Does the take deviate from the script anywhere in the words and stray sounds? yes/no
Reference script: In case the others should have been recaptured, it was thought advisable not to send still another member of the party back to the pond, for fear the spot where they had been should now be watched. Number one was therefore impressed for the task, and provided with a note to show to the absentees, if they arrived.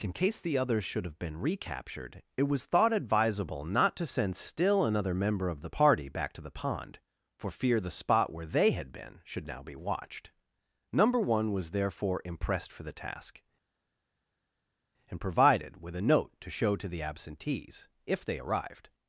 no